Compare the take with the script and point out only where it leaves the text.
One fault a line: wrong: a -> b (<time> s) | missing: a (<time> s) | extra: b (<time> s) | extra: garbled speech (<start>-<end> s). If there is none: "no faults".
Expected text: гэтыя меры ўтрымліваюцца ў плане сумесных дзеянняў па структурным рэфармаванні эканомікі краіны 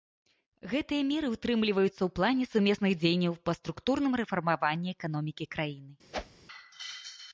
no faults